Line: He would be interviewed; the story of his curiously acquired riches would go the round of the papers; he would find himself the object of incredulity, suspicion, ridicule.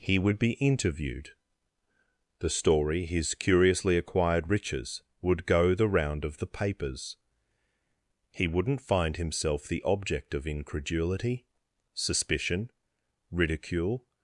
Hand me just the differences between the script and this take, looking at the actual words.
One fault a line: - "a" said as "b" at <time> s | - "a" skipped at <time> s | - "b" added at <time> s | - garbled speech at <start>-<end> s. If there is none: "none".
- "of" skipped at 3.0 s
- "would" said as "wouldn't" at 8.5 s